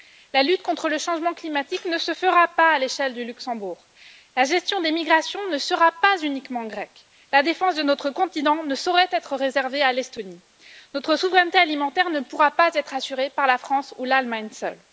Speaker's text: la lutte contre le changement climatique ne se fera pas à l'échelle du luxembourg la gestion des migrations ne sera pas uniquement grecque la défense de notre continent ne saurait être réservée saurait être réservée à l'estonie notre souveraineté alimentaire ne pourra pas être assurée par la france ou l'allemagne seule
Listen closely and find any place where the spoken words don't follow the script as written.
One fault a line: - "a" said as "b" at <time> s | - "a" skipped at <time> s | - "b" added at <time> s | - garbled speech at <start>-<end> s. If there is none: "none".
- "saurait être réservée" skipped at 9.8 s